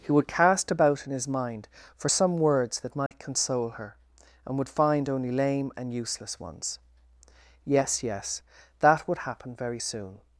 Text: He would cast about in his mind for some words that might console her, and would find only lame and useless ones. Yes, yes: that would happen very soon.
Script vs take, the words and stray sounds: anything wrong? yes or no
yes